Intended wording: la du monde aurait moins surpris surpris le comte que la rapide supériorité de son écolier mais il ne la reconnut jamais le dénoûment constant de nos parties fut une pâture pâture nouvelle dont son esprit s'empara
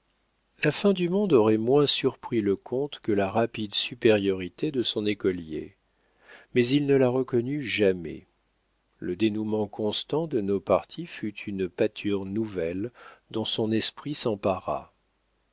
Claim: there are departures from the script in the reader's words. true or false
true